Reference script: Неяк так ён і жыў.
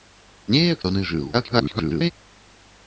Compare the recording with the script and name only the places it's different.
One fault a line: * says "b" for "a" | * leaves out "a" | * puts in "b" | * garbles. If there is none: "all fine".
* leaves out "так"
* garbles